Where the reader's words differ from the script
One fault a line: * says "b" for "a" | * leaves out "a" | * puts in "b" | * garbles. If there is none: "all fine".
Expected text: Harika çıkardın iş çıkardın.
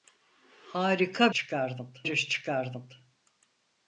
all fine